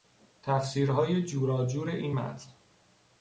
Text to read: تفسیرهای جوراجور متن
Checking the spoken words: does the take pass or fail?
fail